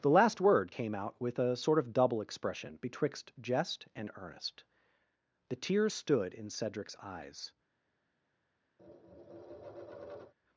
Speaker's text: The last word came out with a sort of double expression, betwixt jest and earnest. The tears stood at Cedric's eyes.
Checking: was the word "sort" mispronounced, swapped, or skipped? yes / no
no